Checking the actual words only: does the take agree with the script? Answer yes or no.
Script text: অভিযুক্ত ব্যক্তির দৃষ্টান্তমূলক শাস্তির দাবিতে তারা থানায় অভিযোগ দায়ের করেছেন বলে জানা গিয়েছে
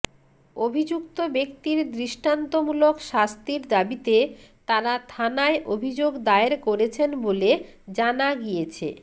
yes